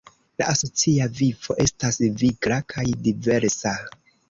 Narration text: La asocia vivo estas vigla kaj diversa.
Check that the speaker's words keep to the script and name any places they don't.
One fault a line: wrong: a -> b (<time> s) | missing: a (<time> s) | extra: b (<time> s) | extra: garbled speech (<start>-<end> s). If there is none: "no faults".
no faults